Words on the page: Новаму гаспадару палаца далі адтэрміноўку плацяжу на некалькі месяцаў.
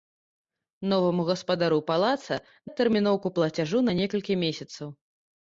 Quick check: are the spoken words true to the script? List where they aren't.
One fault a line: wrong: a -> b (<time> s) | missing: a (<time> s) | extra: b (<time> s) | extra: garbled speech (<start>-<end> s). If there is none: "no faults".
missing: далі (2.4 s)